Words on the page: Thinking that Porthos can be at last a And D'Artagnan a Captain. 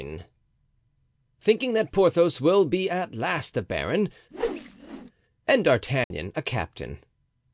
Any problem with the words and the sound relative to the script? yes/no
yes